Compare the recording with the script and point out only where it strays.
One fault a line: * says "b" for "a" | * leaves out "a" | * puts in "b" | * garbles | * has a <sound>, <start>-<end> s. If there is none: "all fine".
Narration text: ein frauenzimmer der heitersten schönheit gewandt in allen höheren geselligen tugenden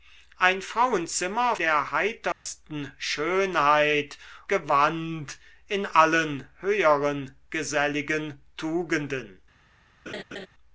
* has a dropout, 2.3-2.5 s
* has a laugh, 10.1-10.5 s